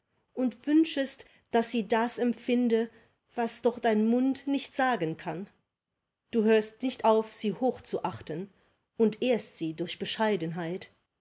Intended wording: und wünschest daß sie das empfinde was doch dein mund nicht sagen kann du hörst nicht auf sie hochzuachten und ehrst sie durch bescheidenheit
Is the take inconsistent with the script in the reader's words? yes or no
no